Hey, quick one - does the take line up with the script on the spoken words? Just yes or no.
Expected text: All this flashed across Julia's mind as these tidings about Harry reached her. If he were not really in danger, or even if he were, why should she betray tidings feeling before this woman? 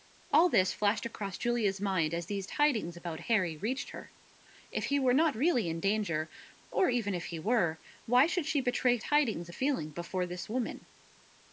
yes